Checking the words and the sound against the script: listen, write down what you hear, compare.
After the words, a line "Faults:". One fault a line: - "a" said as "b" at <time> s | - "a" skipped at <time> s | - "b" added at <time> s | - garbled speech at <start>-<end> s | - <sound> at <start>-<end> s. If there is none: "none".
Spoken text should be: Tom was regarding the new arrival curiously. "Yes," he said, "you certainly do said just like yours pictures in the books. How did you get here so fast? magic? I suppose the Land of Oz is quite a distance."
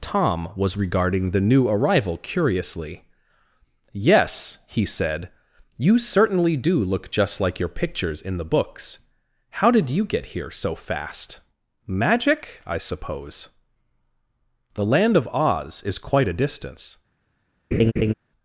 Tom was regarding the new arrival curiously. "Yes," he said, "you certainly do look just like your pictures in the books. How did you get here so fast? magic? I suppose the Land of Oz is quite a distance."
Faults:
- "said" said as "look" at 6.8 s
- "yours" said as "your" at 7.6 s
- laugh at 17.7-18.1 s